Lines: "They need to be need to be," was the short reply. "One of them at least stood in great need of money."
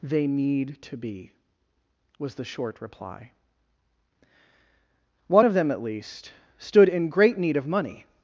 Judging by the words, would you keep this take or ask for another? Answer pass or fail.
fail